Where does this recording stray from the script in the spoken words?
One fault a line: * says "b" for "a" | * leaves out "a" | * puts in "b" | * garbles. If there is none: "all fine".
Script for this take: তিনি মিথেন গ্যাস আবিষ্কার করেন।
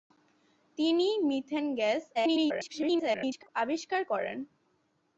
* garbles